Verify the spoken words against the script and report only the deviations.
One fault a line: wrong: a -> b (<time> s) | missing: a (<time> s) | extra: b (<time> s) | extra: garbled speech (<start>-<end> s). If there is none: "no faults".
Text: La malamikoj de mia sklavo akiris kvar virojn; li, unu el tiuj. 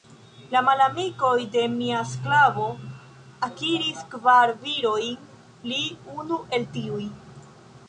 no faults